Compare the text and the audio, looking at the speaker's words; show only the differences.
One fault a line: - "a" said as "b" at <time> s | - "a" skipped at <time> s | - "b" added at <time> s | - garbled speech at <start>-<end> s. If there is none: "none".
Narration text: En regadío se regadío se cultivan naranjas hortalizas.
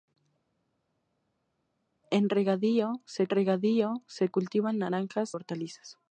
none